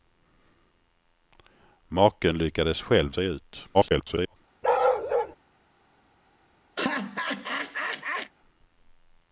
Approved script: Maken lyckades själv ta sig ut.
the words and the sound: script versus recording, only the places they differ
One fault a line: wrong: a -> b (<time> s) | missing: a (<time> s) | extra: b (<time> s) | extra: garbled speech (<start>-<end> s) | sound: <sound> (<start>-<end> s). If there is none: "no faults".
missing: ta (3.1 s)
extra: garbled speech (3.7-4.4 s)
sound: bark (4.6-5.4 s)
sound: laugh (6.8-8.3 s)